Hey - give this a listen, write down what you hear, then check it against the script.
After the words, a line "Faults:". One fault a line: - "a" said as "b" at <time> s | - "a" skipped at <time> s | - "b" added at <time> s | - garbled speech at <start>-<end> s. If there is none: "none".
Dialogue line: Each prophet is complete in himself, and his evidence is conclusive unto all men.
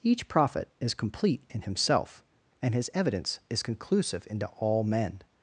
Each prophet is complete in himself, and his evidence is conclusive into all men.
Faults:
- "unto" said as "into" at 4.3 s